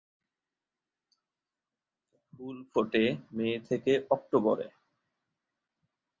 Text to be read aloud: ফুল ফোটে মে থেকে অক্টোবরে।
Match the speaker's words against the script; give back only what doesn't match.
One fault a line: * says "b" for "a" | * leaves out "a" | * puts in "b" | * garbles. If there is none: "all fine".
all fine